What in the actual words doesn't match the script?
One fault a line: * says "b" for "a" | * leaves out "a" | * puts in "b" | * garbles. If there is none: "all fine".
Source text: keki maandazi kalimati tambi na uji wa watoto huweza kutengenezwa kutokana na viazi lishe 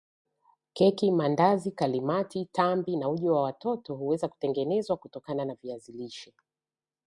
all fine